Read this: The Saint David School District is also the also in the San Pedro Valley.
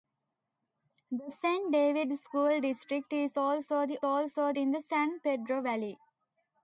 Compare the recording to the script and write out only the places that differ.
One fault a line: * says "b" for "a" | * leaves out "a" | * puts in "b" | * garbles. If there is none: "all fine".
all fine